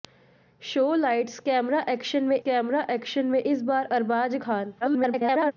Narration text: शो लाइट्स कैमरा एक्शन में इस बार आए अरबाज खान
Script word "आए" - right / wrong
wrong